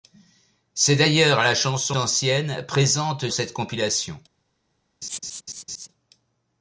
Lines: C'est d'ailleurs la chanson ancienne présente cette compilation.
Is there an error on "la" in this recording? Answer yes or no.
no